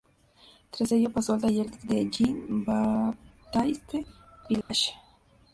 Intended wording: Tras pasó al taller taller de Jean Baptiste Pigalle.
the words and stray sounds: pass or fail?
fail